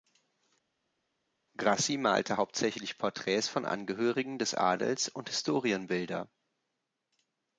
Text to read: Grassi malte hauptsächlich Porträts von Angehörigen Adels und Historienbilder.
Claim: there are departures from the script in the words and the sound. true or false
true